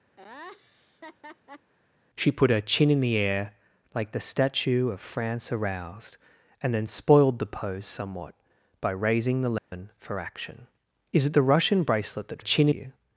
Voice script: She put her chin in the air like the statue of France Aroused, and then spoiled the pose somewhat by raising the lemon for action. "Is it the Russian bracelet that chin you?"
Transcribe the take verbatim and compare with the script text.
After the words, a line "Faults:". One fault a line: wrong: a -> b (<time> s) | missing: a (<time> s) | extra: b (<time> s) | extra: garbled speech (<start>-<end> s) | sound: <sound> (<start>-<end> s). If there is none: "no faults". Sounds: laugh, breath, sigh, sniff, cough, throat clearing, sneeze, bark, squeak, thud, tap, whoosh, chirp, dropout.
She put her chin in the air like the statue of France Aroused, and then spoiled the pose somewhat by raising the lemon for action. "Is it the Russian bracelet that chin you?"
Faults:
sound: laugh (0.2-1.7 s)
sound: dropout (9.6-9.7 s)